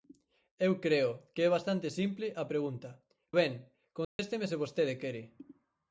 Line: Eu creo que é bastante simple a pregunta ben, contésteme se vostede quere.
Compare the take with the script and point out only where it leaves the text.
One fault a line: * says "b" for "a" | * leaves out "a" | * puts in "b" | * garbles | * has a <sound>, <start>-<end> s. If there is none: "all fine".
* has a dropout, 4.0-4.2 s